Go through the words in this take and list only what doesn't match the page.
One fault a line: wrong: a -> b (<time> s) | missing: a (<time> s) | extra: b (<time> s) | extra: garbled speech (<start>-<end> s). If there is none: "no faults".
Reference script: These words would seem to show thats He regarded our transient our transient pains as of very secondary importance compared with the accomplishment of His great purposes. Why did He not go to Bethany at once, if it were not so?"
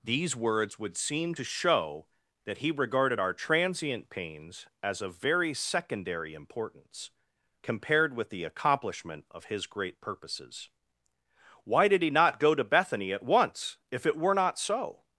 wrong: thats -> that (2.4 s)
missing: our transient (4.1 s)